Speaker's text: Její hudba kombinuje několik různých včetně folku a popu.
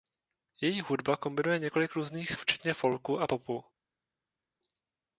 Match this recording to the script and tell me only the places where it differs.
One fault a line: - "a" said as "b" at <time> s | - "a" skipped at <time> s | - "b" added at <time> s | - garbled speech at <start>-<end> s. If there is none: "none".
none